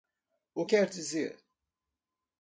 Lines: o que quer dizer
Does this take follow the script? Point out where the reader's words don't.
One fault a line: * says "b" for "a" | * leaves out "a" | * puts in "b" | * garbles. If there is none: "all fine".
* leaves out "que"